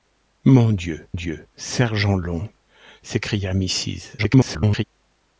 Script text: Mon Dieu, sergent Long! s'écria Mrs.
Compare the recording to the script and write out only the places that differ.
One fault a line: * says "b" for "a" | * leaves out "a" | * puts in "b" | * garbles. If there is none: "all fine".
* puts in "Dieu"
* garbles